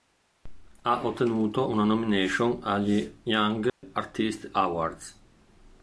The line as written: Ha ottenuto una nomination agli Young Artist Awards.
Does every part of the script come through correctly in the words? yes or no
yes